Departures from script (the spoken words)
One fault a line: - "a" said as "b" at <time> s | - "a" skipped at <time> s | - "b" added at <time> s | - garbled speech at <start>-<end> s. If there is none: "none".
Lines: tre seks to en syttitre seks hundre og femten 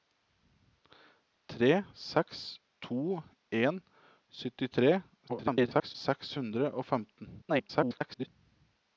- garbled speech at 5.3-5.9 s
- garbled speech at 7.4-8.3 s